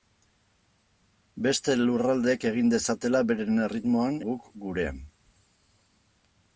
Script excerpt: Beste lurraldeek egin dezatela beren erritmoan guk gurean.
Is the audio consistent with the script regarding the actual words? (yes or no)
yes